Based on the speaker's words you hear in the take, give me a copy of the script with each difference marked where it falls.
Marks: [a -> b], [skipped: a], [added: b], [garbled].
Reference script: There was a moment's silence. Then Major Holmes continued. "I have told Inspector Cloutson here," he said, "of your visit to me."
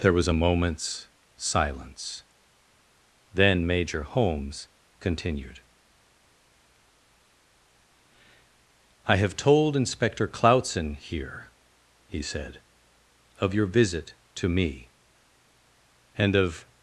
There was a moment's silence. Then Major Holmes continued. "I have told Inspector Cloutson here," he said, "of your visit to me." [added: And of]